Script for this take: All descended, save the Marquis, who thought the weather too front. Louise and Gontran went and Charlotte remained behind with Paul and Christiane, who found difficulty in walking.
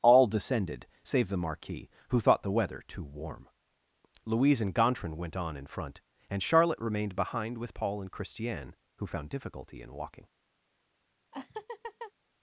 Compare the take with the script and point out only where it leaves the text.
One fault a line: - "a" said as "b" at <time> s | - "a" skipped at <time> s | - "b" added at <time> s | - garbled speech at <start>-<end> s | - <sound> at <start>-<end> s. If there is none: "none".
- "front" said as "warm" at 3.0 s
- "on in front" added at 5.4 s
- laugh at 11.3-12.1 s